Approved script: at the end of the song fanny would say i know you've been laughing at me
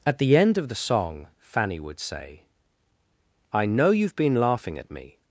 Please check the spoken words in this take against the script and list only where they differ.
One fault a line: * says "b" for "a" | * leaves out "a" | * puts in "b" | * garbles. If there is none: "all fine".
all fine